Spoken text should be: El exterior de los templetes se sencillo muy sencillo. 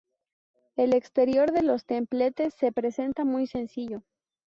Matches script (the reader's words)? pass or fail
fail